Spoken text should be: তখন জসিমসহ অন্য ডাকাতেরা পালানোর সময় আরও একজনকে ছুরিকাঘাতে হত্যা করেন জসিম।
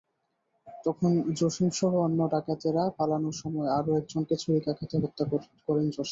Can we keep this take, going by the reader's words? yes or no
yes